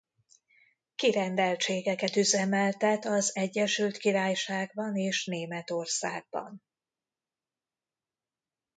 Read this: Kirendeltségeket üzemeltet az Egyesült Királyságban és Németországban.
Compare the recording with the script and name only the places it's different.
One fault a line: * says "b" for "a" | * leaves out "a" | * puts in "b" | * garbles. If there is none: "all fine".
all fine